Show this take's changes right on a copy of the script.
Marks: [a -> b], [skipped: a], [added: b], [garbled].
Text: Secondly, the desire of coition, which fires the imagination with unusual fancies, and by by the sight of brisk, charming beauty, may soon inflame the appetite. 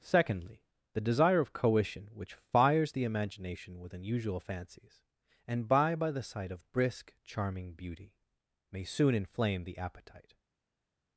Secondly, the desire of coition, which fires the imagination with unusual fancies, and by by the sight of brisk, charming beauty, may soon inflame the appetite.